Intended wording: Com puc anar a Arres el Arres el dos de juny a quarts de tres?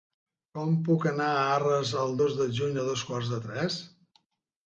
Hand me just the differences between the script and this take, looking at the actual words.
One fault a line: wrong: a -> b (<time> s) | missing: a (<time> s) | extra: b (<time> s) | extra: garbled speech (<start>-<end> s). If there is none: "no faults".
missing: Arres el (2.2 s)
extra: dos (2.9 s)